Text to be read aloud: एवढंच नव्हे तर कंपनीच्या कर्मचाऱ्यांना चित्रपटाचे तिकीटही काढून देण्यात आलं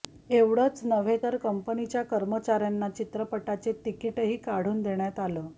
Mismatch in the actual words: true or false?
false